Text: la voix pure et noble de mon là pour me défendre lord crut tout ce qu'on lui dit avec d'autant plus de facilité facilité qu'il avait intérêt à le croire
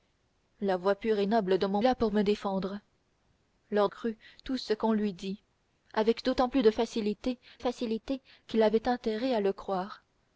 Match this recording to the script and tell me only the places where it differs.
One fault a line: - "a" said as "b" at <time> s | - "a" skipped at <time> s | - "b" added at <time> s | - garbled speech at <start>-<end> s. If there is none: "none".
none